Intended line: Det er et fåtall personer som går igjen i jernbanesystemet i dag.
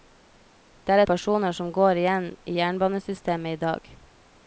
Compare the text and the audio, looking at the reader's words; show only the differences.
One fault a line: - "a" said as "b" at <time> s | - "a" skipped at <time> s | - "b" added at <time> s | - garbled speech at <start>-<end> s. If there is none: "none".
- "et fåtall" skipped at 1.0 s